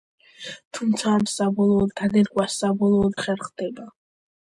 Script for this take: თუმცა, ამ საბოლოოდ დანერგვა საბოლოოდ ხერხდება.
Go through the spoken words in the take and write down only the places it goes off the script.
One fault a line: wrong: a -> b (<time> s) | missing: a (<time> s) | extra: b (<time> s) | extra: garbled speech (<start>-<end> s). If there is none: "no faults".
no faults